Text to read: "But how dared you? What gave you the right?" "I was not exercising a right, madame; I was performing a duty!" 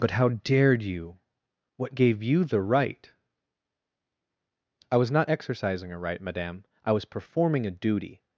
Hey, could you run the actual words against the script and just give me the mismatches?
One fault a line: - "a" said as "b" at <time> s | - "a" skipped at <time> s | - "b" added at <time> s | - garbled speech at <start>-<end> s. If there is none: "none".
none